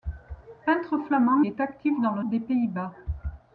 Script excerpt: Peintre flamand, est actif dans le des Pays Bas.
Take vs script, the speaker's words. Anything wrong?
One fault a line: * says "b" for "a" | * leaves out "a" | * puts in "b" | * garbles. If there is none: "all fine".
all fine